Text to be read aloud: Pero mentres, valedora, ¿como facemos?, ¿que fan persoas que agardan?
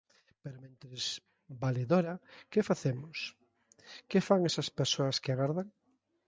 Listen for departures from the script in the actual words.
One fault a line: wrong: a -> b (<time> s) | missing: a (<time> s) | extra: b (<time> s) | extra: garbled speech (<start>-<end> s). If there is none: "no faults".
wrong: como -> que (2.5 s)
extra: esas (4.5 s)